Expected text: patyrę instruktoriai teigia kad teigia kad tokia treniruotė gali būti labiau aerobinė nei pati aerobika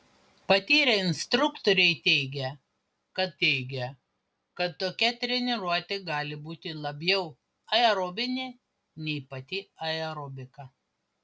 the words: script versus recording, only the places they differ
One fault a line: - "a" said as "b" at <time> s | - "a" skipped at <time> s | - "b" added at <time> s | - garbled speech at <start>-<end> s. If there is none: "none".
none